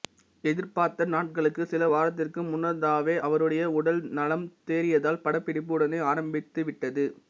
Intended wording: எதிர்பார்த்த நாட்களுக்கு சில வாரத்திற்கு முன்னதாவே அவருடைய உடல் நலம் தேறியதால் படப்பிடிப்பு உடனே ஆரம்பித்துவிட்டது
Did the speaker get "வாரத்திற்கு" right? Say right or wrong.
right